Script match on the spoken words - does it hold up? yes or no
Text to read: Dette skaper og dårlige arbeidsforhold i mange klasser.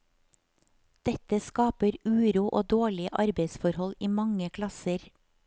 no